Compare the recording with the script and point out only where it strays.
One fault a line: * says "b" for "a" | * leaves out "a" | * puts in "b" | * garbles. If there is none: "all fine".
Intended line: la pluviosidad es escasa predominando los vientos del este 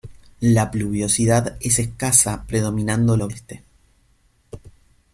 * leaves out "vientos del"